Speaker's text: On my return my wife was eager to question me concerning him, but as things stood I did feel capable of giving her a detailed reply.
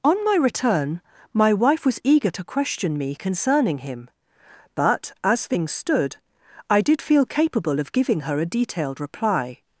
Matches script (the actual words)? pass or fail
pass